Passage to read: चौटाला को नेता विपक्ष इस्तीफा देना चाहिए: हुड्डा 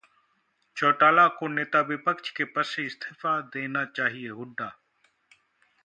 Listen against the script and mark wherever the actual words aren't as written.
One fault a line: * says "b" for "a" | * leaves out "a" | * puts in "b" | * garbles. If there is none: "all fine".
* puts in "के पद से"